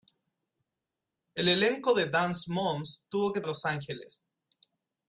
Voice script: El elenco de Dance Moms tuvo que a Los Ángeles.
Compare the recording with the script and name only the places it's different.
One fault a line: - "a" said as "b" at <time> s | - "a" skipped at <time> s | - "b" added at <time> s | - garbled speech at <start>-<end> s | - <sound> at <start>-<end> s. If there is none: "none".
none